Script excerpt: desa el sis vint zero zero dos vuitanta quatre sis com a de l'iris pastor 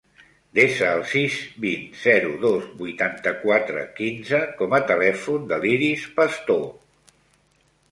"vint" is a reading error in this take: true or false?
false